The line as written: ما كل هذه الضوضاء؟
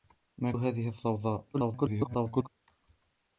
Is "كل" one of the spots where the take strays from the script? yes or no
yes